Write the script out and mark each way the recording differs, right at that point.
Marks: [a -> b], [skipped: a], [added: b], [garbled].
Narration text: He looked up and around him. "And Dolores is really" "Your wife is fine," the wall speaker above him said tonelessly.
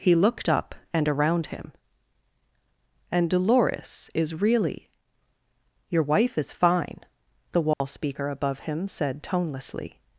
He looked up and around him. "And Dolores is really" "Your wife is fine," the wall speaker above him said tonelessly.